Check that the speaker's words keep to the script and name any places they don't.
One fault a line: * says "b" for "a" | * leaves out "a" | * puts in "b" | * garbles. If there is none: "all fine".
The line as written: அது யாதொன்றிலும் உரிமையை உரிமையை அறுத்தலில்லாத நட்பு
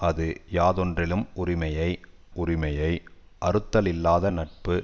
all fine